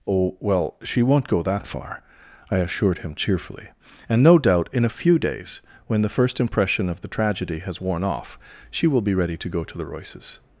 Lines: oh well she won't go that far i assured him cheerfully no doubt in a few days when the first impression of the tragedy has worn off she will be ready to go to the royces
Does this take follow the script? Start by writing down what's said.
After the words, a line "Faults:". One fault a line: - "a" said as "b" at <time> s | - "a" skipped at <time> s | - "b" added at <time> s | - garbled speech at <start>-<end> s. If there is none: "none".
oh well she won't go that far i assured him cheerfully and no doubt in a few days when the first impression of the tragedy has worn off she will be ready to go to the royces
Faults:
- "and" added at 4.1 s